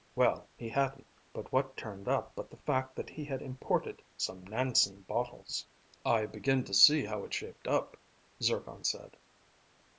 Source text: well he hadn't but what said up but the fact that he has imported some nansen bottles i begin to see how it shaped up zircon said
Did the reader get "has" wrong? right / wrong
wrong